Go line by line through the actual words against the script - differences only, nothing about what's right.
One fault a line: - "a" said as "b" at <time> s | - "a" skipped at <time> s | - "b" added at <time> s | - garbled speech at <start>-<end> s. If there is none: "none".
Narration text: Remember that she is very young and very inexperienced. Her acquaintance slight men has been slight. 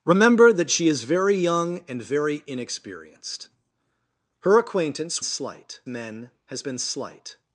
none